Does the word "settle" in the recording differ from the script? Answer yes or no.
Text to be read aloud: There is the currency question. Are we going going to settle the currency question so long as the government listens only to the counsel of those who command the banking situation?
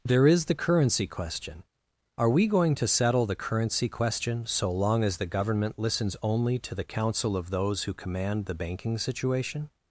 no